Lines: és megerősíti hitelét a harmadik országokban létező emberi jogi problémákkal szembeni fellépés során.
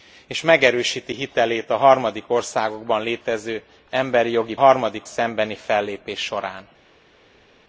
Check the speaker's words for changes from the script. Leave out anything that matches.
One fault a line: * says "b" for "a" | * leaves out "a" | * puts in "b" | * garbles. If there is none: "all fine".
* says "harmadik" for "problémákkal"